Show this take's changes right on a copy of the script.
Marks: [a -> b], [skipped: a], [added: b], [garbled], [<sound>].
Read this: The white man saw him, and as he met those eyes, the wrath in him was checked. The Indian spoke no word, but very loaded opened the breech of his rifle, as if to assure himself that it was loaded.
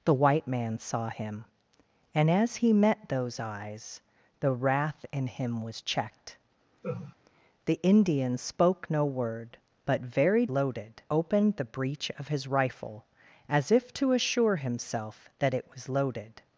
The white man saw him, and as he met those eyes, the wrath in him was checked. [laugh] The Indian spoke no word, but very loaded opened the breech of his rifle, as if to assure himself that it was loaded.